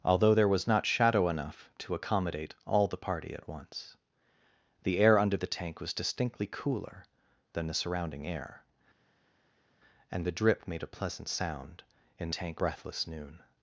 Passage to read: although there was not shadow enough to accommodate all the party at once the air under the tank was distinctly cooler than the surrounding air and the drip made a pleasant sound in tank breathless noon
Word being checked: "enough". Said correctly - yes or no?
yes